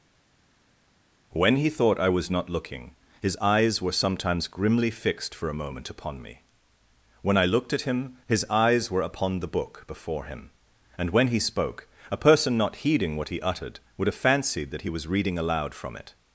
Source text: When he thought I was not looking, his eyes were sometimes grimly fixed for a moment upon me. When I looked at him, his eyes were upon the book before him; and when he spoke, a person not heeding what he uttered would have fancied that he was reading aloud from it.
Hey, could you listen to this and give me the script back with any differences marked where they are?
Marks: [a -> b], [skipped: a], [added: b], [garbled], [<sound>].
When he thought I was not looking, his eyes were sometimes grimly fixed for a moment upon me. When I looked at him, his eyes were upon the book before him; and when he spoke, a person not heeding what he uttered would have fancied that he was reading aloud from it.